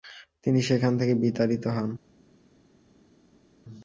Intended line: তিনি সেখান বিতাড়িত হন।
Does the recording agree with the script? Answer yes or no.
no